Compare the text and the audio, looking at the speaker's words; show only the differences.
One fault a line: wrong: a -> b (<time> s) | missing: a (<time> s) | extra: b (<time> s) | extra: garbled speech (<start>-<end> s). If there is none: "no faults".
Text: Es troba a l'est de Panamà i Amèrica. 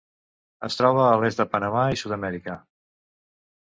extra: Sud (2.0 s)